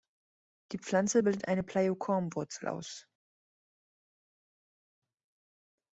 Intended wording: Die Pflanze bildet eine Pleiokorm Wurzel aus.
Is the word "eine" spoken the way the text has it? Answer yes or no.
yes